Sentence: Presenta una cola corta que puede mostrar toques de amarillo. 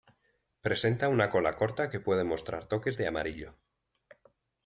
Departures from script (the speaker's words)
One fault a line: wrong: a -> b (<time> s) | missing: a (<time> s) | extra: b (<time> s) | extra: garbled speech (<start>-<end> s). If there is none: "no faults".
no faults